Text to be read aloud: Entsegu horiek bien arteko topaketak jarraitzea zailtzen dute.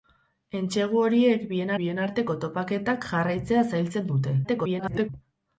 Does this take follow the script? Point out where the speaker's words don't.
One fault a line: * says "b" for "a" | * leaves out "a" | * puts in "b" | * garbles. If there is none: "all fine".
* puts in "bien"
* garbles